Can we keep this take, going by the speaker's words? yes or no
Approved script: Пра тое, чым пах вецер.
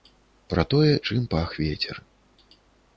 yes